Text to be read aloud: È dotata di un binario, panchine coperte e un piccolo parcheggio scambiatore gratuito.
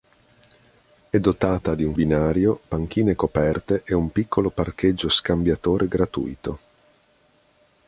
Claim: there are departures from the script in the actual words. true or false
false